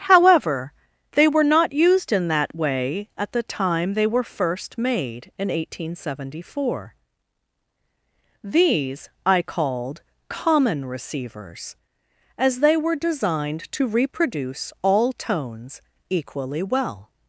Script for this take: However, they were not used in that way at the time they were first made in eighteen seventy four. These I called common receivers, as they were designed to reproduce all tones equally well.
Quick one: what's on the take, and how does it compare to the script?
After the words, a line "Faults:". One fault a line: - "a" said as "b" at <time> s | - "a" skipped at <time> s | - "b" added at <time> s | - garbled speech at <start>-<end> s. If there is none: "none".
However, they were not used in that way at the time they were first made in eighteen seventy four. These I called common receivers, as they were designed to reproduce all tones equally well.
Faults:
none